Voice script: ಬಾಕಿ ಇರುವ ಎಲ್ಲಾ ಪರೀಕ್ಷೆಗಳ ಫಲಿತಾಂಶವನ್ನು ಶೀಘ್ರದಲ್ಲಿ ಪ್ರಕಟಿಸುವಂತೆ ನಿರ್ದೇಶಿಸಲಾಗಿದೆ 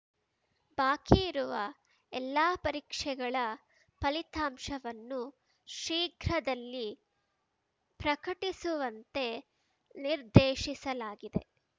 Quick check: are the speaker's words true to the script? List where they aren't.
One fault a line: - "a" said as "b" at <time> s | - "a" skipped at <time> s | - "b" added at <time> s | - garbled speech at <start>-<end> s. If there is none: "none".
none